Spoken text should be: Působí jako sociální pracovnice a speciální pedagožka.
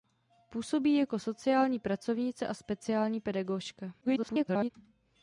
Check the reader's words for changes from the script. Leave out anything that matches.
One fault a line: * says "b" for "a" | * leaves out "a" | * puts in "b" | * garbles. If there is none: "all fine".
* garbles